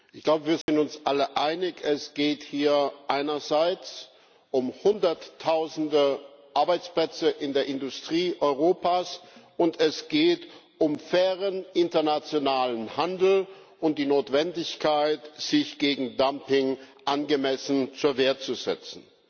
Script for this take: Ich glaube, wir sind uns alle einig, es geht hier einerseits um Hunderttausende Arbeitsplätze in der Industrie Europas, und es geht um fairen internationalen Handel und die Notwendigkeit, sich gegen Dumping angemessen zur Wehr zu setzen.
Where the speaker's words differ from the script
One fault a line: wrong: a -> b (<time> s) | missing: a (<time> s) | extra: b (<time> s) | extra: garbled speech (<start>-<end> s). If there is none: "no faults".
no faults